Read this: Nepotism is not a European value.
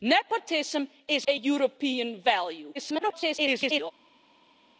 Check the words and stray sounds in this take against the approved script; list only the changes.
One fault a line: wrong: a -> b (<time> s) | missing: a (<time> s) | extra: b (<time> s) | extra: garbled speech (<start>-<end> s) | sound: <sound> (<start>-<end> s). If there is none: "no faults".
missing: not (1.3 s)
extra: garbled speech (2.7-3.9 s)